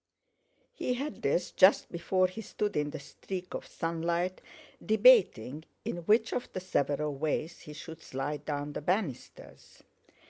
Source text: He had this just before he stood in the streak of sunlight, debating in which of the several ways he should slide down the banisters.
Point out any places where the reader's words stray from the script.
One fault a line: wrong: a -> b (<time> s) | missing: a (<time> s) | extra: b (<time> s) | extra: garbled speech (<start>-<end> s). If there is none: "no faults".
no faults